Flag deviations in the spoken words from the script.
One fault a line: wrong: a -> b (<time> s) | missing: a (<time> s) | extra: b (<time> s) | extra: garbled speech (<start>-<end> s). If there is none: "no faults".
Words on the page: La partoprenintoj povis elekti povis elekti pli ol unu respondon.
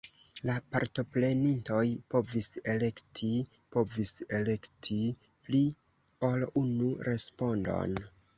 no faults